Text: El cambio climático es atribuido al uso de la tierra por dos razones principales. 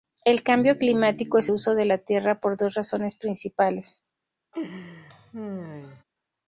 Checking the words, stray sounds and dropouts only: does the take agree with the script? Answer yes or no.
no